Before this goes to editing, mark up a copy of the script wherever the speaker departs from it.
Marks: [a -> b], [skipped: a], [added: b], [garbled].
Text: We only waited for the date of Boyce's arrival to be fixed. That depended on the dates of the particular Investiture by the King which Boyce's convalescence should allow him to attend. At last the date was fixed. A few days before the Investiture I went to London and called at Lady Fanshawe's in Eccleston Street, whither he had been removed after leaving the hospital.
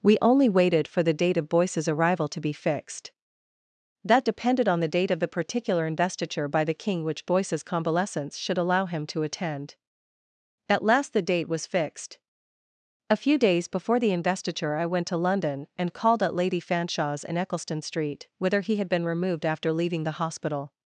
We only waited for the date of Boyce's arrival to be fixed. That depended on the [dates -> date] of the particular Investiture by the King which Boyce's convalescence should allow him to attend. At last the date was fixed. A few days before the Investiture I went to London and called at Lady Fanshawe's in Eccleston Street, whither he had been removed after leaving the hospital.